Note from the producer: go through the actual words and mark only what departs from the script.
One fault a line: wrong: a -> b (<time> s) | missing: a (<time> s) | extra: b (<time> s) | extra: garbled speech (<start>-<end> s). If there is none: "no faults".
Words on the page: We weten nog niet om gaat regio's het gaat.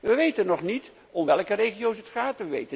wrong: gaat -> welke (1.3 s)